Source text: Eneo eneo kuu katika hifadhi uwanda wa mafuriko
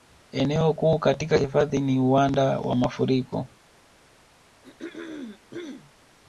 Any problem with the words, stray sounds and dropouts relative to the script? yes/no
yes